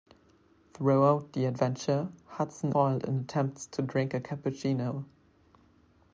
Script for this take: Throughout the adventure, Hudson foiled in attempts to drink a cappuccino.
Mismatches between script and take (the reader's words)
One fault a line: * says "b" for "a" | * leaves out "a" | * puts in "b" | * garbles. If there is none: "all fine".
all fine